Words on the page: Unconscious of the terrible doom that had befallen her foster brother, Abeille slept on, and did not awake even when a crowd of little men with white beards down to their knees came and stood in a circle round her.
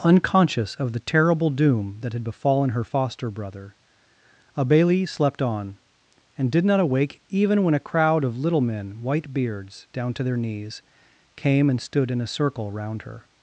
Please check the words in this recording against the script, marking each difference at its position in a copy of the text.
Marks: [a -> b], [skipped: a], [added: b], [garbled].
Unconscious of the terrible doom that had befallen her foster brother, Abeille slept on, and did not awake even when a crowd of little men [skipped: with] white beards down to their knees came and stood in a circle round her.